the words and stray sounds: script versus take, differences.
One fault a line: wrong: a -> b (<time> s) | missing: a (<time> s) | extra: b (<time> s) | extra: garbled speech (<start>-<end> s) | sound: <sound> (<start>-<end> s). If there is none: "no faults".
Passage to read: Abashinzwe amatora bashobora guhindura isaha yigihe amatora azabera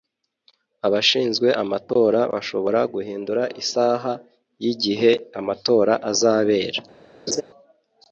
sound: laugh (7.3-7.4 s)